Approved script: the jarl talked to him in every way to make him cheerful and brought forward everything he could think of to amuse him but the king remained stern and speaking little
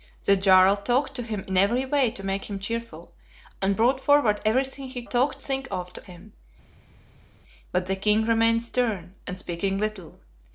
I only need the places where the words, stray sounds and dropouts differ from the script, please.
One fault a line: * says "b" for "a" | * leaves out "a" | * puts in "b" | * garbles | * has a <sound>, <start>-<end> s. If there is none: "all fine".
* says "talked" for "could"
* leaves out "amuse"